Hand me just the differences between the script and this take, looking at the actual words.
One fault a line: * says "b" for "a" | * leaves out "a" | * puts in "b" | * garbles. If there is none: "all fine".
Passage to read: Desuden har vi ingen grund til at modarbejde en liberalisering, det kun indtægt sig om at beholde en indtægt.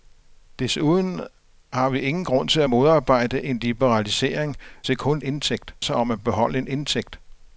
all fine